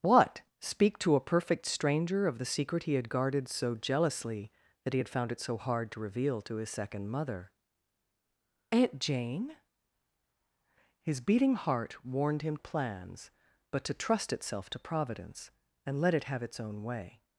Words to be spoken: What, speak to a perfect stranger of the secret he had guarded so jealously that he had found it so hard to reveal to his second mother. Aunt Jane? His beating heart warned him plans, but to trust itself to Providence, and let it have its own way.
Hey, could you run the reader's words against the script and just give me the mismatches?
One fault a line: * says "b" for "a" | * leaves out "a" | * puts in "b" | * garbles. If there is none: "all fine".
all fine